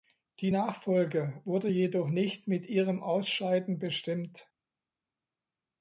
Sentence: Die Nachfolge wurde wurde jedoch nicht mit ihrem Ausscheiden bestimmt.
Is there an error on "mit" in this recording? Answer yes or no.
no